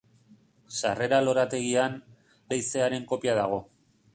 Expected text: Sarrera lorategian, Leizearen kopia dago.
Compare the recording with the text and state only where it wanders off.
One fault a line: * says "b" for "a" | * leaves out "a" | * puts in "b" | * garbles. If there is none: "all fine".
all fine